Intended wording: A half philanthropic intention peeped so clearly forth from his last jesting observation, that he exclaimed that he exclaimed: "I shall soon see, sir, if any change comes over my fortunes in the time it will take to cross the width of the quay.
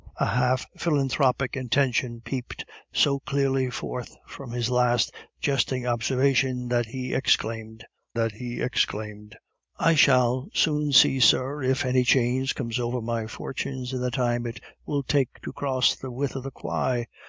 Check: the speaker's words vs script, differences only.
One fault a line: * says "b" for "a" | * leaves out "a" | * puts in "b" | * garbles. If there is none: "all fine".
all fine